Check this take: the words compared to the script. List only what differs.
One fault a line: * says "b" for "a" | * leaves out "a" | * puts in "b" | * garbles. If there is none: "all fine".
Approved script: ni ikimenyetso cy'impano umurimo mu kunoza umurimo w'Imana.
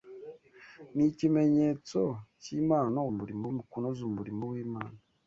all fine